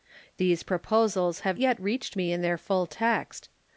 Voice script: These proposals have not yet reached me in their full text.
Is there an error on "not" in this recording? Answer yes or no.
yes